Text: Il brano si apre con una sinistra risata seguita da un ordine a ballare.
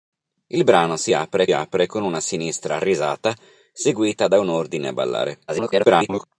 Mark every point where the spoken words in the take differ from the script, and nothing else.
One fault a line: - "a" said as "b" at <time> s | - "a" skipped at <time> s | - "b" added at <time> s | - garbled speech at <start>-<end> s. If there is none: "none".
- "apre" added at 1.5 s
- garbled speech at 5.5-6.3 s